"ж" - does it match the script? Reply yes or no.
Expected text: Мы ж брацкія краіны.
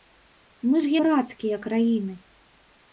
yes